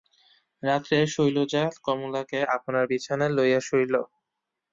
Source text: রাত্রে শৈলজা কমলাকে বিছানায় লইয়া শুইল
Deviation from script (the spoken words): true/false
true